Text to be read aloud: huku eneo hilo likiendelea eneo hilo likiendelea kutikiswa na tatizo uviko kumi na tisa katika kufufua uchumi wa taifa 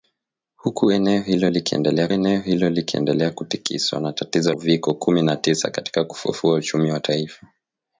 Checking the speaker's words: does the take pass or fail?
pass